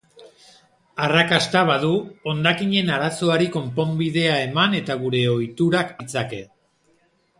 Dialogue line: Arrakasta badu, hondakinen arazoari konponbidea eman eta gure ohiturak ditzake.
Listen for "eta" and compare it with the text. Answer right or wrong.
right